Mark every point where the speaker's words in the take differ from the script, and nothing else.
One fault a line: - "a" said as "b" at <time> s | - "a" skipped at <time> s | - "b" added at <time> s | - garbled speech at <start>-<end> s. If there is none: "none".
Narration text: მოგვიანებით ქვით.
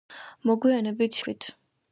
none